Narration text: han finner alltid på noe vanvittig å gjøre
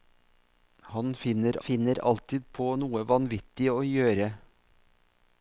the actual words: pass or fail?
fail